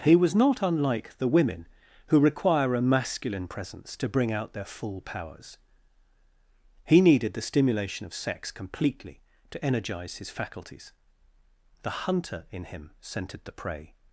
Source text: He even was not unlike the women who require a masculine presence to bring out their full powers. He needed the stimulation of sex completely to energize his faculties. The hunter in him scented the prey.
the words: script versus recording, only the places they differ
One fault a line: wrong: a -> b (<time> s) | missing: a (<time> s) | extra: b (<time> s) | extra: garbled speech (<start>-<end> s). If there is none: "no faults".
missing: even (0.1 s)